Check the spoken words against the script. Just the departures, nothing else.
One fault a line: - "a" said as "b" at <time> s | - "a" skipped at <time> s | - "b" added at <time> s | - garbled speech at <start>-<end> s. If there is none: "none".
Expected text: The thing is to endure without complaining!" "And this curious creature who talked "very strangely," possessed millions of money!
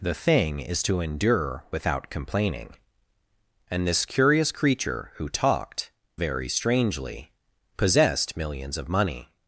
none